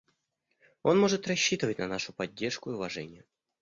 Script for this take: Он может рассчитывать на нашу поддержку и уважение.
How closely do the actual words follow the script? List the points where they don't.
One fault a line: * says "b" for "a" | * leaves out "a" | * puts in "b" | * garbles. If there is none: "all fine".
all fine